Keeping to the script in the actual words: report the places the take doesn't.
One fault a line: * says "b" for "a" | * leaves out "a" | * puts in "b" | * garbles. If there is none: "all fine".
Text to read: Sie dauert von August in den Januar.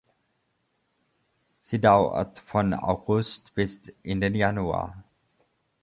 * puts in "bis"